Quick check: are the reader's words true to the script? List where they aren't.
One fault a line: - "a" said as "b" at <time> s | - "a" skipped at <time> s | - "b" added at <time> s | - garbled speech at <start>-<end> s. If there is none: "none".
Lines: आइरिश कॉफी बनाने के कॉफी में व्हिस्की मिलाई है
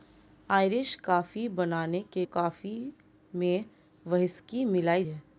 none